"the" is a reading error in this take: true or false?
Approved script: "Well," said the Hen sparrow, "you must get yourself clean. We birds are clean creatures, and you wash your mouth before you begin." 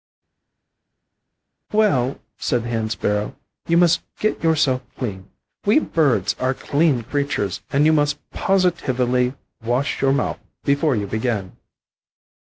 false